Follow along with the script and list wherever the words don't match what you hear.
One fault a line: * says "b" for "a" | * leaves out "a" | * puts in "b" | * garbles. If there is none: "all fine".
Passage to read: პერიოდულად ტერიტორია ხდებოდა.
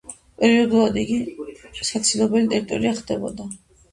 * puts in "იგი საცილობელი"